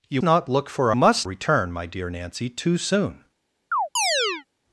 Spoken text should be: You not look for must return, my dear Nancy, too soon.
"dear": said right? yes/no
yes